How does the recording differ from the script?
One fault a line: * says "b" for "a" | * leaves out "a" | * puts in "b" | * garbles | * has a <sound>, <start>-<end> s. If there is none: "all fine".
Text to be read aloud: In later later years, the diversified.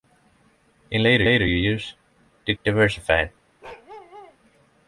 * has a bark, 3.6-4.4 s